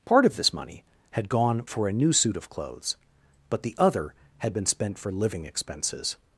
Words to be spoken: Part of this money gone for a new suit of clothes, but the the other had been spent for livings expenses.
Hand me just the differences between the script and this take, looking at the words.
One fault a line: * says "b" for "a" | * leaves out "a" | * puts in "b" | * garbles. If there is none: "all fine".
* puts in "had"
* leaves out "the"
* says "living" for "livings"